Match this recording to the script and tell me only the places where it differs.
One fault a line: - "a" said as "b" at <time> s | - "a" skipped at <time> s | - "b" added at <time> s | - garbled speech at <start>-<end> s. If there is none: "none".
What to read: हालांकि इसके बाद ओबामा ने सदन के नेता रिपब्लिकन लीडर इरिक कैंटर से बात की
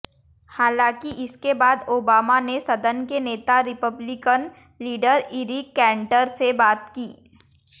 none